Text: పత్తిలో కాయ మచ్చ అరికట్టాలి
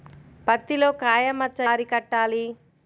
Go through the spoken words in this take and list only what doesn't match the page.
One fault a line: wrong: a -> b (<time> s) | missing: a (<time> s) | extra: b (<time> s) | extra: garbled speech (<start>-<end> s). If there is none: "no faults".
no faults